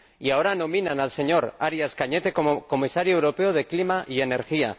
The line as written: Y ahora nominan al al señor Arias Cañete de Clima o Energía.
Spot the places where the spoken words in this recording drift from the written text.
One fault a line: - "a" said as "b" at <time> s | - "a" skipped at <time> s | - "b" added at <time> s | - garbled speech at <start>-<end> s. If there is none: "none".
- "al" skipped at 1.1 s
- "como Comisario europeo" added at 2.3 s
- "o" said as "y" at 4.1 s